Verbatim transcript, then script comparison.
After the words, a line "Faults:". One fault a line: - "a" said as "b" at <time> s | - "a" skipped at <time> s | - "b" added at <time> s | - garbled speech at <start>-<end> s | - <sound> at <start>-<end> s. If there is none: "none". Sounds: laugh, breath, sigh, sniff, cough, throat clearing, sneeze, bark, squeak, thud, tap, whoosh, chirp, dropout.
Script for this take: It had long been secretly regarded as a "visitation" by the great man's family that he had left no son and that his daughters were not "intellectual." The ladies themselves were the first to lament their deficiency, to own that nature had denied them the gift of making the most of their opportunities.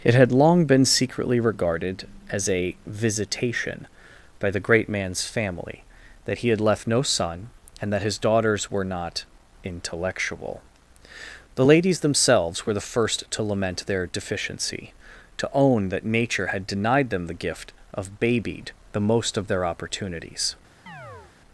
It had long been secretly regarded as a "visitation" by the great man's family that he had left no son and that his daughters were not "intellectual." The ladies themselves were the first to lament their deficiency, to own that nature had denied them the gift of babied the most of their opportunities.
Faults:
- "making" said as "babied" at 18.2 s
- chirp at 20.9-21.3 s